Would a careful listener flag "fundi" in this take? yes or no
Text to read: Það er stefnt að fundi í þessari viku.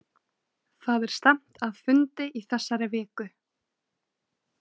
no